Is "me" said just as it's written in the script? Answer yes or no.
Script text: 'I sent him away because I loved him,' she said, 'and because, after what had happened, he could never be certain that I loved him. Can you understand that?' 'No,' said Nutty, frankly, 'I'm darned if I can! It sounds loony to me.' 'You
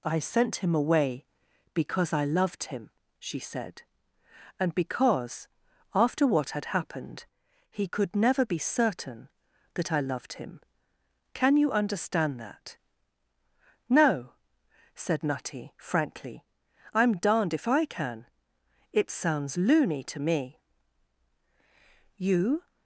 yes